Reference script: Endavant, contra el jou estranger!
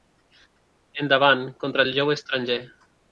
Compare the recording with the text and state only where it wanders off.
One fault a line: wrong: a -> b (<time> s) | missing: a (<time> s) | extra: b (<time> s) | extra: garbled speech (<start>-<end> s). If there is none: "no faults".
no faults